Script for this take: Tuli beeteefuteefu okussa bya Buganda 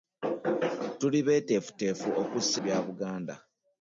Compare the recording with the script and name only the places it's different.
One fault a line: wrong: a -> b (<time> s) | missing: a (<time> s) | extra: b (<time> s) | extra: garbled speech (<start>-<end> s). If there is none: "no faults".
no faults